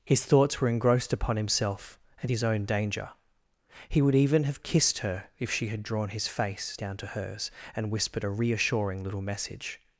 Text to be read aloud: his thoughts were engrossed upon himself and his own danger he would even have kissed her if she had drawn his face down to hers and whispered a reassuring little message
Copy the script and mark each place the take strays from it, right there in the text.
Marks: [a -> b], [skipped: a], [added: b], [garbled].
his thoughts were engrossed upon himself and his own danger he would even have kissed her if she had drawn his face down to hers and whispered a reassuring little message